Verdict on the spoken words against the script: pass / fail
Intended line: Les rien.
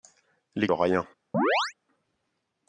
pass